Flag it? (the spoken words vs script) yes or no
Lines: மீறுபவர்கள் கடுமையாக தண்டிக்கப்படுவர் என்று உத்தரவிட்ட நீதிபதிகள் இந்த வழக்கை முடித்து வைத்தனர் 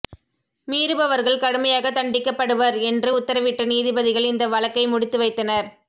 no